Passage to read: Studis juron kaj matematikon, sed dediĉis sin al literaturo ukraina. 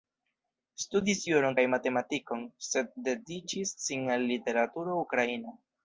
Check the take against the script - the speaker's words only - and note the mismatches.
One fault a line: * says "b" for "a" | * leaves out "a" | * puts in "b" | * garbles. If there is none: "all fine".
all fine